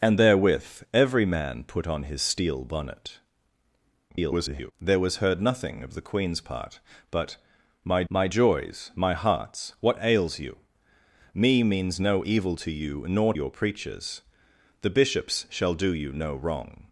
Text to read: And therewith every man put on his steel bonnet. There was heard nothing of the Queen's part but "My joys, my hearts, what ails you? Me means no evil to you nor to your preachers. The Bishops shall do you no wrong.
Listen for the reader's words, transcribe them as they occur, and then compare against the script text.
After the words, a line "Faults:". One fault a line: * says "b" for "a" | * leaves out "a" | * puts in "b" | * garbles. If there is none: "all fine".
And therewith every man put on his steel bonnet. [garbled] There was heard nothing of the Queen's part but "My my joys, my hearts, what ails you? Me means no evil to you nor your preachers. The Bishops shall do you no wrong.
Faults:
* garbles
* puts in "my"
* leaves out "to"